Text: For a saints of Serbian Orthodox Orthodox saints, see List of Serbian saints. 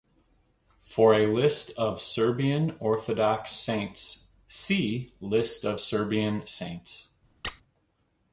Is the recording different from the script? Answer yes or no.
yes